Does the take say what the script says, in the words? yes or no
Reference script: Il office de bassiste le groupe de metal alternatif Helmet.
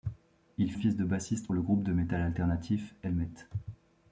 yes